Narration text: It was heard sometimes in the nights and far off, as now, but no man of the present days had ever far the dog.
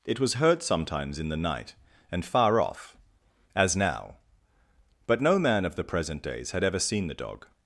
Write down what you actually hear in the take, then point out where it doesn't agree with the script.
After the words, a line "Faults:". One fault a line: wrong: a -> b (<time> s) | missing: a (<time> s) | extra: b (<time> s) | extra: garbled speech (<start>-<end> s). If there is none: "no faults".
It was heard sometimes in the night and far off, as now, but no man of the present days had ever seen the dog.
Faults:
wrong: nights -> night (1.4 s)
wrong: far -> seen (6.8 s)